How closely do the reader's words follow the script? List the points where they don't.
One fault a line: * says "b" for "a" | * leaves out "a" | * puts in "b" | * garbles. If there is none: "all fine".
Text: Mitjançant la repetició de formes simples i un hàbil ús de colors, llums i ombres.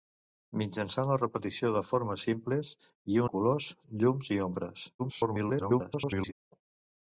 * leaves out "un hàbil ús"
* garbles